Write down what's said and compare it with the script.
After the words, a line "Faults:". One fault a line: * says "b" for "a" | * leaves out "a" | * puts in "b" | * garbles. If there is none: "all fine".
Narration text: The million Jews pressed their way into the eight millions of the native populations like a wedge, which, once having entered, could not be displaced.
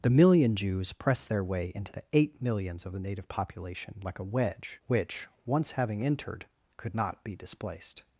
The million Jews pressed their way into the eight millions of the native population like a wedge, which, once having entered, could not be displaced.
Faults:
* says "population" for "populations"